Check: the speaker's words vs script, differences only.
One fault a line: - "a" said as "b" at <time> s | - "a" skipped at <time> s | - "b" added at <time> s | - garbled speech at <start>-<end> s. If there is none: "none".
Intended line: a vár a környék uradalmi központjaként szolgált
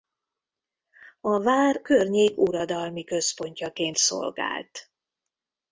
- "a" skipped at 1.8 s